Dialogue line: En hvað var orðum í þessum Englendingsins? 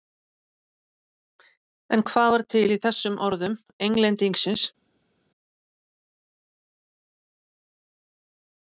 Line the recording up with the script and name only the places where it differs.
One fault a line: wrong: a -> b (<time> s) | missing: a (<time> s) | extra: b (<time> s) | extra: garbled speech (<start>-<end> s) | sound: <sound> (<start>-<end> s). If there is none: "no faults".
wrong: orðum -> til (2.5 s)
extra: orðum (3.3 s)